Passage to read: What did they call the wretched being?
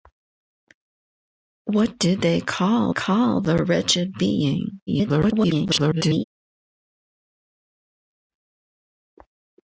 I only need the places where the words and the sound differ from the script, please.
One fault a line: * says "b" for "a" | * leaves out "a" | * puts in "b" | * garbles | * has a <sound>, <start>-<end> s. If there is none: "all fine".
* puts in "call"
* garbles